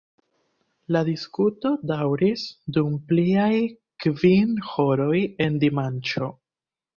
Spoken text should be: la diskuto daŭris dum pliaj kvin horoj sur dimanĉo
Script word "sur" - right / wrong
wrong